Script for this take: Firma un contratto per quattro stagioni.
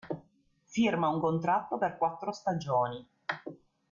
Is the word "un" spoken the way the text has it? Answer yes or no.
yes